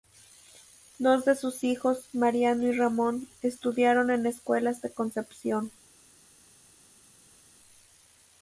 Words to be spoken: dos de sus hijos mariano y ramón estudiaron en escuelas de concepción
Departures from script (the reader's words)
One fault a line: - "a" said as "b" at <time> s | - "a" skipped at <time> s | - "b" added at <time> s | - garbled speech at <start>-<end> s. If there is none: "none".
none